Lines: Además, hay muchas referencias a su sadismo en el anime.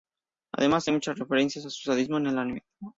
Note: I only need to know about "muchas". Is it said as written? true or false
true